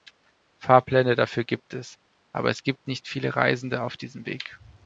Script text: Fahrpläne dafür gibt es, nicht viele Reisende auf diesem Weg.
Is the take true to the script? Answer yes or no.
no